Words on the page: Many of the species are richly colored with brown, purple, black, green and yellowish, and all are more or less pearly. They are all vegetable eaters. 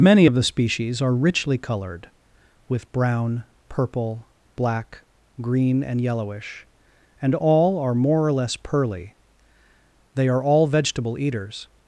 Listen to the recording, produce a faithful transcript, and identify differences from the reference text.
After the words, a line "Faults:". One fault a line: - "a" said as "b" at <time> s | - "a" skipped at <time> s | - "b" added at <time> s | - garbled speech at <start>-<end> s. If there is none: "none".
Many of the species are richly colored with brown, purple, black, green and yellowish, and all are more or less pearly. They are all vegetable eaters.
Faults:
none